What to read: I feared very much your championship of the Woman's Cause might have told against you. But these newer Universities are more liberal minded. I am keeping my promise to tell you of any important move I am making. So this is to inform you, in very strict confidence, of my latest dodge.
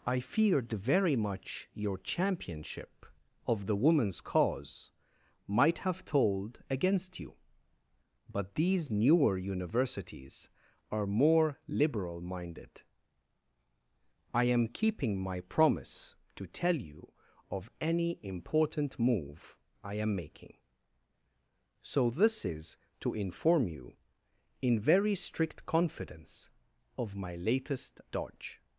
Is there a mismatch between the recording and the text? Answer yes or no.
no